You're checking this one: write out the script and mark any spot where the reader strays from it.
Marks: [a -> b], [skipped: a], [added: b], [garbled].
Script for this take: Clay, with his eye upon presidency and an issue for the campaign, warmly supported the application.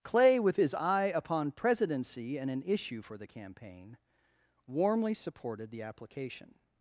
Clay, with his eye upon presidency and an issue for the campaign, warmly supported the application.